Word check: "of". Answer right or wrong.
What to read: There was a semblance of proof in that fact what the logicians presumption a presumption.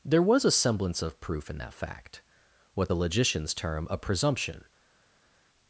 right